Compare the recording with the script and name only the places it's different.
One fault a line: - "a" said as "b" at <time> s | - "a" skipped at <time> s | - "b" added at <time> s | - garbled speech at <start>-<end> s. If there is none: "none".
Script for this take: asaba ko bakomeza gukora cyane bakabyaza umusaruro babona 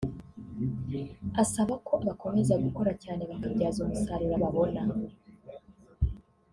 none